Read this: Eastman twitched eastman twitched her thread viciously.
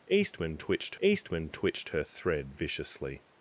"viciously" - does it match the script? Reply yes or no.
yes